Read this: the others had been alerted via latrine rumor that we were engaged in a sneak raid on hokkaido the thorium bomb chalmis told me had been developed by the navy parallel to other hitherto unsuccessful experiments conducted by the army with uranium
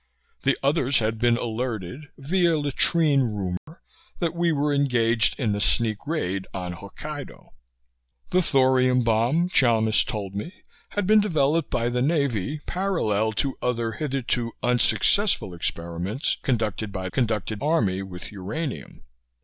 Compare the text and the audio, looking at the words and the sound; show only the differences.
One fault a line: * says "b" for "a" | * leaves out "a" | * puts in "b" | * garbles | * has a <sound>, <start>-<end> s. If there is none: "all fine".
* has a dropout, 3.6-3.7 s
* says "conducted" for "the"